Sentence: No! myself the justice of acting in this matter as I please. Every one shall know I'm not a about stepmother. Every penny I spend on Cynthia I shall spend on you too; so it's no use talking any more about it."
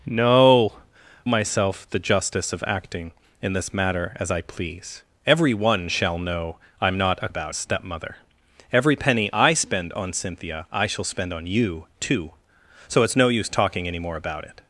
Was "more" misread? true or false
false